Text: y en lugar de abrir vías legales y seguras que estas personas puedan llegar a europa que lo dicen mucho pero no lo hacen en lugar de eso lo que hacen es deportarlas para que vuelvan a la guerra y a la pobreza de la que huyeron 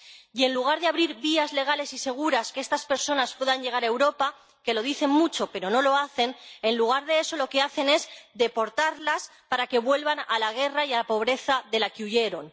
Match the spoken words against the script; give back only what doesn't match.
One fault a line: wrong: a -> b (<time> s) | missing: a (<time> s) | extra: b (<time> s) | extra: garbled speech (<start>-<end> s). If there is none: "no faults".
no faults